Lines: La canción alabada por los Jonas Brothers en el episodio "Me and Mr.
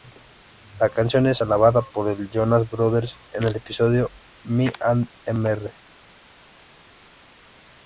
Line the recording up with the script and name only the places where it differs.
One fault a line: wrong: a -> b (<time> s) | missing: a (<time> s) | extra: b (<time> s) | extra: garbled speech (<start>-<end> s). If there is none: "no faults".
extra: es (1.3 s)